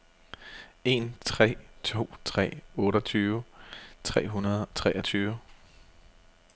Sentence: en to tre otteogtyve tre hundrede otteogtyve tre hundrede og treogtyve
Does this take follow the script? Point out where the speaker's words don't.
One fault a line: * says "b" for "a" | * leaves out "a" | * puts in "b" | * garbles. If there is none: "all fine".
* leaves out "to"
* says "to" for "otteogtyve"
* leaves out "hundrede"